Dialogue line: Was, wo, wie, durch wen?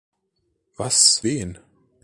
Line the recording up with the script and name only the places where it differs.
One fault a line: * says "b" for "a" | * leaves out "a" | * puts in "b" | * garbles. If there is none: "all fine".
* leaves out "wo wie durch"